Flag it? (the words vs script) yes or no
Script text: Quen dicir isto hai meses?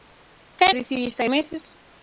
no